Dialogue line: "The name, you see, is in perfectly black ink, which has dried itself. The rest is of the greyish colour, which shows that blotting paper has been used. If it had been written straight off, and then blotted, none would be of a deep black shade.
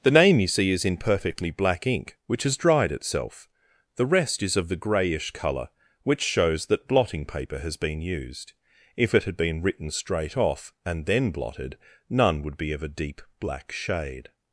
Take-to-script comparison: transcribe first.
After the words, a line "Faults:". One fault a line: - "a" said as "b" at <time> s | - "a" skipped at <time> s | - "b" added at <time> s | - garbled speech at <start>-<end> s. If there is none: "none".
"The name, you see, is in perfectly black ink, which has dried itself. The rest is of the greyish colour, which shows that blotting paper has been used. If it had been written straight off, and then blotted, none would be of a deep black shade.
Faults:
none